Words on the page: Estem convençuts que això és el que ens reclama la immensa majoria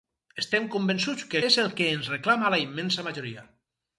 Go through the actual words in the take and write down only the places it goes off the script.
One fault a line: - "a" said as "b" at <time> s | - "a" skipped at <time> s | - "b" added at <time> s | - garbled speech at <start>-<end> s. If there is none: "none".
- "això" skipped at 1.4 s